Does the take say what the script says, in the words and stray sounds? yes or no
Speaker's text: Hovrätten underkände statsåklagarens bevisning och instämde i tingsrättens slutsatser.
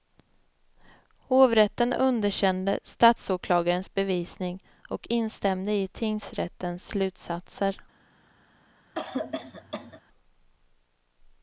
no